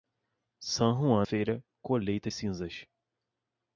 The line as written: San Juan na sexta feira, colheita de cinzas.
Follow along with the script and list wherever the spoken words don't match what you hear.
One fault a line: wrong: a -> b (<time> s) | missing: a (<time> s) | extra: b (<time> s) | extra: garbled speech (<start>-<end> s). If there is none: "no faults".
missing: na sexta (1.3 s)
missing: de (2.3 s)